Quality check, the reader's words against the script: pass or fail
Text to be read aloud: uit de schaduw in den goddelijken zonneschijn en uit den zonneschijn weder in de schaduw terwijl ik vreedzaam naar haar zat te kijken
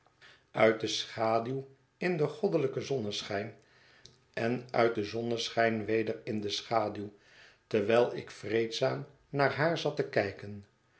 pass